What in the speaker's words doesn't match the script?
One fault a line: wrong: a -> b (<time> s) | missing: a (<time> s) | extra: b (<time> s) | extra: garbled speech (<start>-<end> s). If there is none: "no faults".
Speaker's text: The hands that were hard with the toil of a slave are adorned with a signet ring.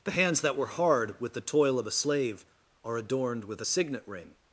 no faults